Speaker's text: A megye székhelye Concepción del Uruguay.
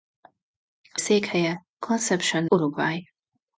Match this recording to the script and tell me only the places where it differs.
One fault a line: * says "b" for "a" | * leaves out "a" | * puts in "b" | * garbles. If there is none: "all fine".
* leaves out "megye"
* leaves out "del"